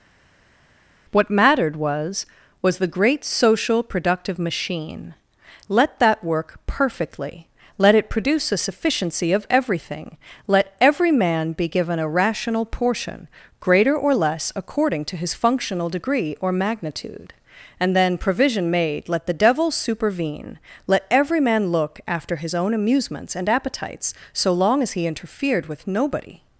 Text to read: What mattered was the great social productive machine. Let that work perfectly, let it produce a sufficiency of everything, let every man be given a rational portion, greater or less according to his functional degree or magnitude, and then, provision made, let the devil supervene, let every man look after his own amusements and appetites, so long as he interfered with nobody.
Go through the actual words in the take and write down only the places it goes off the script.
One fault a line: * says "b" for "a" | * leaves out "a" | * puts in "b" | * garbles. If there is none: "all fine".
* puts in "was"